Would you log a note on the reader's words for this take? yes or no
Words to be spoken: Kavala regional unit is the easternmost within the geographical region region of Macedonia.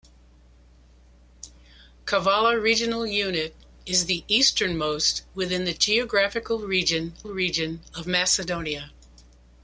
no